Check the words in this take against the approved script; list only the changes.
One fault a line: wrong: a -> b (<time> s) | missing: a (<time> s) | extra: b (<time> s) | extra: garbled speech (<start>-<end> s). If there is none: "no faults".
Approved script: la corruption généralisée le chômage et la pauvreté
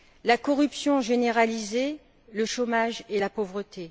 no faults